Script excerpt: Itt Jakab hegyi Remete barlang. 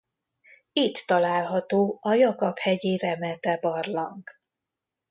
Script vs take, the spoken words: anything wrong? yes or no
yes